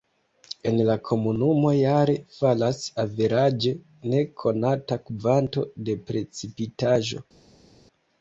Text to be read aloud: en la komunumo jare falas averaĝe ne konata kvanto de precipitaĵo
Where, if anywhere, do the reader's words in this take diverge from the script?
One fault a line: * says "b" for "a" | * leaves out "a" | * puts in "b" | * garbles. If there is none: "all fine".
all fine